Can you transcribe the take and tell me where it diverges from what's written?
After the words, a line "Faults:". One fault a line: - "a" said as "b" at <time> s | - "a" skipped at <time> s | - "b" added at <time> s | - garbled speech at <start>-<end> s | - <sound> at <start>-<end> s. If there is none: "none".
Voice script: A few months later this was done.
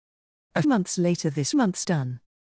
A months later this months done.
Faults:
- "few" skipped at 0.6 s
- "was" said as "months" at 1.5 s